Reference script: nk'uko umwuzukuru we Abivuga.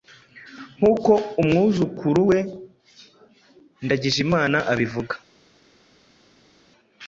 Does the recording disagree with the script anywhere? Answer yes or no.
yes